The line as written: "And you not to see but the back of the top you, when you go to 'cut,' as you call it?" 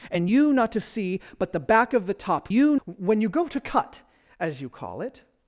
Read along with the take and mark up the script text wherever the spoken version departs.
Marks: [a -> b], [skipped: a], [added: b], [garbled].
"And you not to see but the back of the top you, when you go to 'cut,' as you call it?"